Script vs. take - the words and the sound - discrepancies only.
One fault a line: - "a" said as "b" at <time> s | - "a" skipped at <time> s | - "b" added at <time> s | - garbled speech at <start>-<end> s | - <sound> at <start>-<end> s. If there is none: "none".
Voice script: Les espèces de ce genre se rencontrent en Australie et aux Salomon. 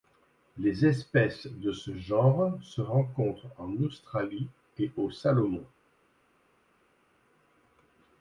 none